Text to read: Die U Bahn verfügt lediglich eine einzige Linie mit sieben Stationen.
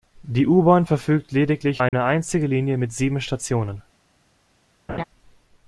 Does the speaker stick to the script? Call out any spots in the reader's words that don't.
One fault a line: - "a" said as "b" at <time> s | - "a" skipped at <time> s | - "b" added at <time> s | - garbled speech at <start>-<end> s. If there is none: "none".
none